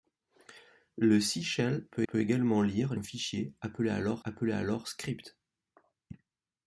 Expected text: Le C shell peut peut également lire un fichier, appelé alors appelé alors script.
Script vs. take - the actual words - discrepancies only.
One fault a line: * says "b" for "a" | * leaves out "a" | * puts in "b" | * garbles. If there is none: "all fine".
all fine